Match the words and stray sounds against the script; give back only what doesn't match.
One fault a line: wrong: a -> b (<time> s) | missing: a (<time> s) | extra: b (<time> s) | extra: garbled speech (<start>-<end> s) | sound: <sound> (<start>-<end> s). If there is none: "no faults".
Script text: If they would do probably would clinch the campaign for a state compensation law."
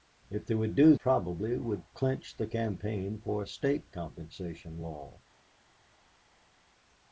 no faults